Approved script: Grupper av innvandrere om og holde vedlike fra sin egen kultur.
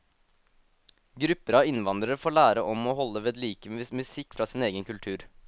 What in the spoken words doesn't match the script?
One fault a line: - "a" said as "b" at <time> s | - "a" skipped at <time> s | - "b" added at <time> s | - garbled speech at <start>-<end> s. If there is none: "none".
- "får lære" added at 2.2 s
- "musikk" added at 3.8 s